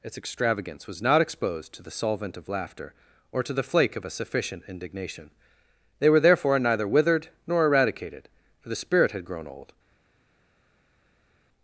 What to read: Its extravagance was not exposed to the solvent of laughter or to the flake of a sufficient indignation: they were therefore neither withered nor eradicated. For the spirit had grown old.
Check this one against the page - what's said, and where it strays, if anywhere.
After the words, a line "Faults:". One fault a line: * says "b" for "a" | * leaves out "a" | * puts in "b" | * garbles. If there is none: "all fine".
Its extravagance was not exposed to the solvent of laughter or to the flake of a sufficient indignation: they were therefore neither withered nor eradicated. For the spirit had grown old.
Faults:
all fine